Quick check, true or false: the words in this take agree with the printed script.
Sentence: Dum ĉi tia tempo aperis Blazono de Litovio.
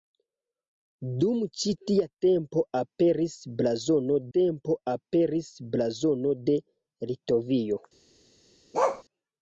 false